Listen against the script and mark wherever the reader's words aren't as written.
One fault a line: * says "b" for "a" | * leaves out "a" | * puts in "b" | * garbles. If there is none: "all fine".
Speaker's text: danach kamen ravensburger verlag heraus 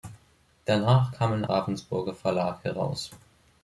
all fine